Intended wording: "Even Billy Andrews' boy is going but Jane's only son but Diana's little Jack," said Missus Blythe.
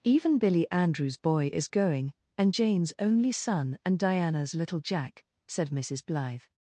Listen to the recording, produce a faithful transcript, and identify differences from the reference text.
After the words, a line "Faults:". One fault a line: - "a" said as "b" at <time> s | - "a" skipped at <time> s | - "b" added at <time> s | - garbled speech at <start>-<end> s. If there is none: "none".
"Even Billy Andrews' boy is going and Jane's only son and Diana's little Jack," said Missus Blythe.
Faults:
- "but" said as "and" at 2.4 s
- "but" said as "and" at 3.8 s